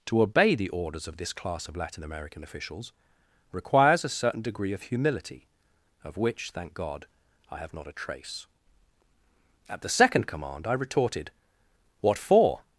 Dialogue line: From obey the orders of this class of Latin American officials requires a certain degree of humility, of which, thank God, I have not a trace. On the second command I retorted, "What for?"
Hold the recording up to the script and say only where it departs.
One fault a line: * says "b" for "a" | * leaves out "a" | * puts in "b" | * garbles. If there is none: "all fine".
* says "To" for "From"
* says "At" for "On"